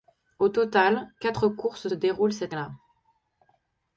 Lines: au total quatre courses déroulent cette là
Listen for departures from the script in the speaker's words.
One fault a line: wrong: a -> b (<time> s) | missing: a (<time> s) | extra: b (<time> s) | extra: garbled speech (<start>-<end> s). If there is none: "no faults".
no faults